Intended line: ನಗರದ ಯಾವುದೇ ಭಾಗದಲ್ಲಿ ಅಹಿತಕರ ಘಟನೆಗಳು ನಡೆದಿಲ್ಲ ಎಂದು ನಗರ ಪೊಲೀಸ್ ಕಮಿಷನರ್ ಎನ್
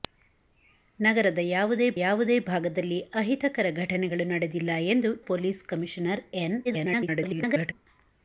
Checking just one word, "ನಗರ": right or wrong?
wrong